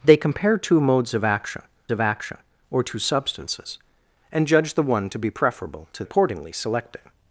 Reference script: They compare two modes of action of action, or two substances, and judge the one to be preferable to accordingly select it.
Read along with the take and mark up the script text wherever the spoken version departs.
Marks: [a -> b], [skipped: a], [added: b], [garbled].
They compare two modes of action of action, or two substances, and judge the one to be preferable to accordingly select it.